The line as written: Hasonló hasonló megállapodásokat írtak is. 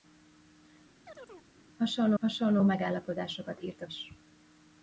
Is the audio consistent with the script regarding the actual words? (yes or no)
yes